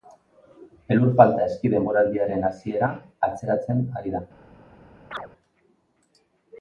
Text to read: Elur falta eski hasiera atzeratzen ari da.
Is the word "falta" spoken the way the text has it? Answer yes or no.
yes